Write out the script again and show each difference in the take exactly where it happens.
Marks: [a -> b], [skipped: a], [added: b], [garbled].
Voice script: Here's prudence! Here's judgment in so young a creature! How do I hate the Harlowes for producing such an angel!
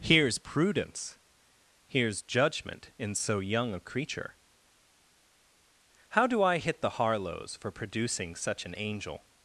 Here's prudence! Here's judgment in so young a creature! How do I [hate -> hit] the Harlowes for producing such an angel!